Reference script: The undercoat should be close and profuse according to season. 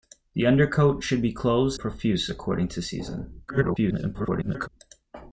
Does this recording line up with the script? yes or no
no